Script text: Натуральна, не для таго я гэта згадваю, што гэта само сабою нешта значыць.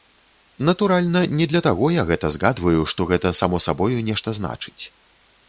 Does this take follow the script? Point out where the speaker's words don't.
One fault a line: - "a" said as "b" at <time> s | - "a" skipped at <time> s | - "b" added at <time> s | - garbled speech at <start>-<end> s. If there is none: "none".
none